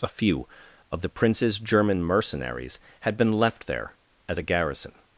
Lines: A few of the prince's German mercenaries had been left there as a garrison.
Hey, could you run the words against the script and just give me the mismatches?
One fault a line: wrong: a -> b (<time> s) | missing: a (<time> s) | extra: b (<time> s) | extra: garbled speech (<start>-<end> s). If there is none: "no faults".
no faults